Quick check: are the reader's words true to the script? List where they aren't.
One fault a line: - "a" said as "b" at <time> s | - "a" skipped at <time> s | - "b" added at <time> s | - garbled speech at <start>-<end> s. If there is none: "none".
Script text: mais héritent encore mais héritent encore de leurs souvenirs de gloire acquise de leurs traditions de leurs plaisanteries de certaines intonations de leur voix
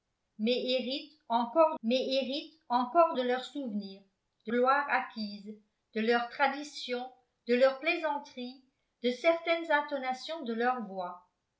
none